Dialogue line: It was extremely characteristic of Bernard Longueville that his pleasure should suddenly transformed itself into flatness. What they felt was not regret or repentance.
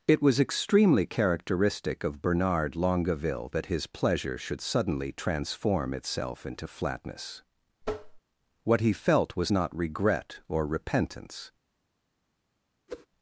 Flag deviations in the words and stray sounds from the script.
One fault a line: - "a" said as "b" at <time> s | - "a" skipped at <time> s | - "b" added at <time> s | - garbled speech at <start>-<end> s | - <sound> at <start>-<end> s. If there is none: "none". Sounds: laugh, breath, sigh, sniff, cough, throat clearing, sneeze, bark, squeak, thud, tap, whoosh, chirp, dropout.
- "transformed" said as "transform" at 5.1 s
- tap at 7.8-8.2 s
- "they" said as "he" at 8.8 s
- whoosh at 12.9-13.1 s